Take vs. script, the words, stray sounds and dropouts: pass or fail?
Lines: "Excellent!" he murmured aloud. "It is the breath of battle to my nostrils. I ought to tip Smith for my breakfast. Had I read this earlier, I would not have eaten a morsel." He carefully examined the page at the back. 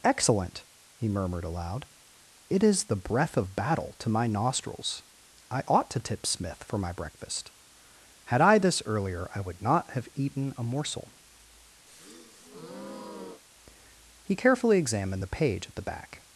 fail